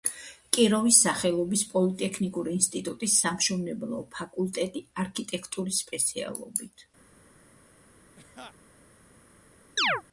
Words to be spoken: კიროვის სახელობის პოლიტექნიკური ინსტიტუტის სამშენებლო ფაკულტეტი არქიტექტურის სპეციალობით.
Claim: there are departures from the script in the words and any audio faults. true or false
true